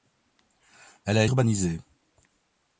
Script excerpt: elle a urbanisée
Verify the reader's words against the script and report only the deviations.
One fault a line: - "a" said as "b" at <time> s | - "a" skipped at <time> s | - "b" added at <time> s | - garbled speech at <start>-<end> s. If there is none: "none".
none